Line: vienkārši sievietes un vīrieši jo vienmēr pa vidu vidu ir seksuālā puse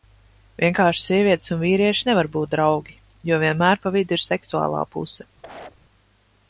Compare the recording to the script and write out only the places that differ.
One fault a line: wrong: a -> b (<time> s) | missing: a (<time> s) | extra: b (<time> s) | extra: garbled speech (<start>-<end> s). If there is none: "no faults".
extra: nevar būt draugi (2.1 s)
missing: vidu (4.2 s)